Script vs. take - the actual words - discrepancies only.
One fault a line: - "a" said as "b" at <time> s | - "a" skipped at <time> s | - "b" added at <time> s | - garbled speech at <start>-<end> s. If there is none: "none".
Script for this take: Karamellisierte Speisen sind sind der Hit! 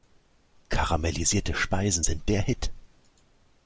- "sind" skipped at 2.3 s